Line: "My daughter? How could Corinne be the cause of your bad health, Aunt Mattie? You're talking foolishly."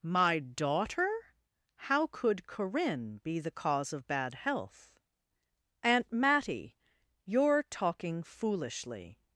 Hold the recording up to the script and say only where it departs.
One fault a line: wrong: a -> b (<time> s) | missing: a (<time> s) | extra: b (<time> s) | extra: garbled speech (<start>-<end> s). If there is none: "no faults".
missing: your (4.1 s)